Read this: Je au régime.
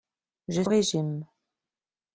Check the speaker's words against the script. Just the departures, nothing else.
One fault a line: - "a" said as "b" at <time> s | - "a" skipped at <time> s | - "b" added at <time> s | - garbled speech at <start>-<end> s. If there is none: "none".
none